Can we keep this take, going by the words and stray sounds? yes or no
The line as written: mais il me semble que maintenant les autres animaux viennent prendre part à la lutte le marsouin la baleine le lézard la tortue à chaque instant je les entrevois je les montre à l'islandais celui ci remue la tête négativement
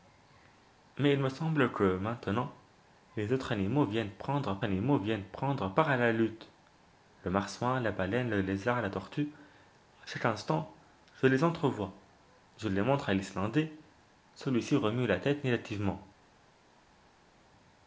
no